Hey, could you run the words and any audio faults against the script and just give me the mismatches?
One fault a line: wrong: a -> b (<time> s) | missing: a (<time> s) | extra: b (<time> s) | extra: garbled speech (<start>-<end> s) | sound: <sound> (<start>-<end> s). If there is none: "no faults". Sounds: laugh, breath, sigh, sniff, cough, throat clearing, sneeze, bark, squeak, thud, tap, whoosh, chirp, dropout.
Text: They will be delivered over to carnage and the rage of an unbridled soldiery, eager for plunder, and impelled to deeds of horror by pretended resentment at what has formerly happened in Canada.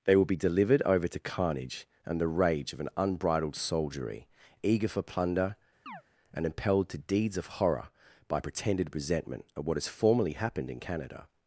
sound: chirp (5.9-6.0 s)